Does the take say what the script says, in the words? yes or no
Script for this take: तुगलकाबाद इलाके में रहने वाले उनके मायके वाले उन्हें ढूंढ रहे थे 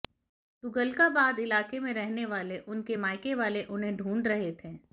yes